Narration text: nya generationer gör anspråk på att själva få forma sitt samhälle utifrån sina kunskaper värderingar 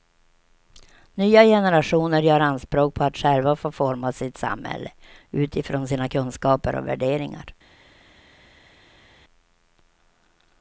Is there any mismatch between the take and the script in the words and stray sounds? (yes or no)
yes